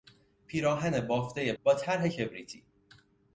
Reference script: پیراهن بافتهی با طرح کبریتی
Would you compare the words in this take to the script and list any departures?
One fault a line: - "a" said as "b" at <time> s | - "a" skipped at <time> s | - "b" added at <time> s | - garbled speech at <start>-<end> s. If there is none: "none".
none